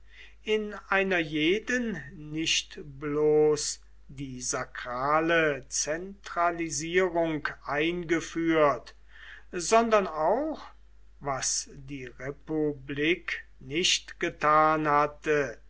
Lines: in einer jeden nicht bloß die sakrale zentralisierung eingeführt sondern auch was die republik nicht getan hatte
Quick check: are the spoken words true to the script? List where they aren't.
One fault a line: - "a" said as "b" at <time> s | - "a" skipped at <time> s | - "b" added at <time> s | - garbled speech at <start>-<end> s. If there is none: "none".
none